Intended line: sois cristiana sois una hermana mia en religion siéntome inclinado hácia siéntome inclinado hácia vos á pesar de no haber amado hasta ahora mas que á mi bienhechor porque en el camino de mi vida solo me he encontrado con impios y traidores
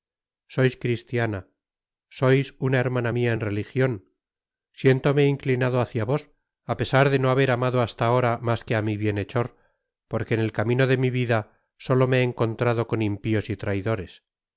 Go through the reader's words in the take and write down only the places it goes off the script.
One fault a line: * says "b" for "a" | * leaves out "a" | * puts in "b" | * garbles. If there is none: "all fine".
* leaves out "siéntome inclinado hácia"